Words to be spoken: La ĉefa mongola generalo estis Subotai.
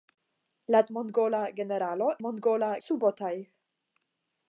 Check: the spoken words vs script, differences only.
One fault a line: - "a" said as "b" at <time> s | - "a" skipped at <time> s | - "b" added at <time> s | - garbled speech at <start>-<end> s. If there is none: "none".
- "ĉefa" skipped at 0.8 s
- "estis" said as "mongola" at 2.3 s